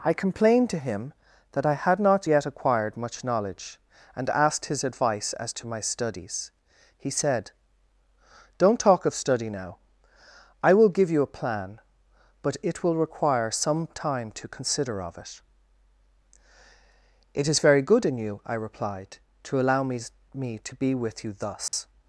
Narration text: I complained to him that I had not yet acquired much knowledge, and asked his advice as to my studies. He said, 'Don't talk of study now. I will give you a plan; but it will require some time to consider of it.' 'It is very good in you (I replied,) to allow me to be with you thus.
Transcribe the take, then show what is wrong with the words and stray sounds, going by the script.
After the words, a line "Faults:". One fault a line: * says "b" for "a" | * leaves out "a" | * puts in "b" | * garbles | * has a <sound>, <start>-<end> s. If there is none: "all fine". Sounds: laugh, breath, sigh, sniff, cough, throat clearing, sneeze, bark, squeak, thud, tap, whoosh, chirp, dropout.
I complained to him that I had not yet acquired much knowledge, and asked his advice as to my studies. He said, 'Don't talk of study now. I will give you a plan; but it will require some time to consider of it.' 'It is very good in you (I replied,) to allow me me to be with you thus.
Faults:
* puts in "me"
* has a dropout, 21.7-21.7 s